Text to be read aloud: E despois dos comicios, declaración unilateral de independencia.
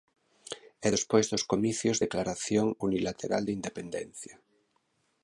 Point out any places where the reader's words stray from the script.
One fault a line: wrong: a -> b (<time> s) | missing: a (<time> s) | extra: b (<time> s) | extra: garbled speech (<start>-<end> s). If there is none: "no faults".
no faults